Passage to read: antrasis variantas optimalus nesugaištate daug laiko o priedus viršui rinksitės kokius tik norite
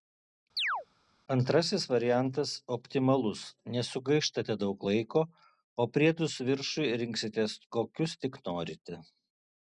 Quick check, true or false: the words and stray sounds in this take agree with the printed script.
false